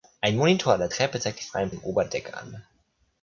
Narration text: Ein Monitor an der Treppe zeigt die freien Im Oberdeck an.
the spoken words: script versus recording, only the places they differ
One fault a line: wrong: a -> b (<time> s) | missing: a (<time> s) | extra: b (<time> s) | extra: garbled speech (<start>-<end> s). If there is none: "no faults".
no faults